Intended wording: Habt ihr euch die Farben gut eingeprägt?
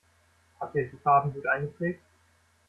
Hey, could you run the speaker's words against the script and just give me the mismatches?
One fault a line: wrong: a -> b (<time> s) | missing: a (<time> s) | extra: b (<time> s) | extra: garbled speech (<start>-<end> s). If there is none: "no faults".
no faults